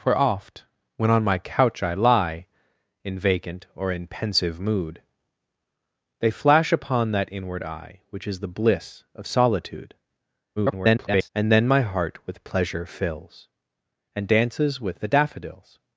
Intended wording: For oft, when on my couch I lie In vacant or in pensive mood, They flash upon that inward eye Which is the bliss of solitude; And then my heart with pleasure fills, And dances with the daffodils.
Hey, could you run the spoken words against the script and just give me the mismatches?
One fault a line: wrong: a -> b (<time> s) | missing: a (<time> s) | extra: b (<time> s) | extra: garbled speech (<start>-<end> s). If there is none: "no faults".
extra: garbled speech (10.6-11.3 s)